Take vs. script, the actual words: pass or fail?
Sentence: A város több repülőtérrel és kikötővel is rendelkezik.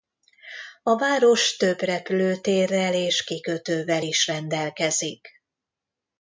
pass